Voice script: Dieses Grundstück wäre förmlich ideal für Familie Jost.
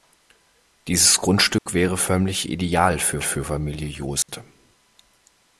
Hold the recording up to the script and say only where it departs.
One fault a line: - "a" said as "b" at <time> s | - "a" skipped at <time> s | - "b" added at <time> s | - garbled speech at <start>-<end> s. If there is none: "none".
- "für" added at 3.2 s